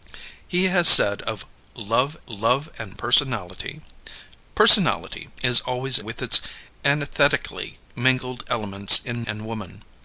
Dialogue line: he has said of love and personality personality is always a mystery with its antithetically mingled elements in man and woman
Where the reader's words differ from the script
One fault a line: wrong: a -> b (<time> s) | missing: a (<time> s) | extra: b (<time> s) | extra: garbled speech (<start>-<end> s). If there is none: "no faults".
extra: love (2.3 s)
missing: a mystery (6.0 s)
missing: man (9.3 s)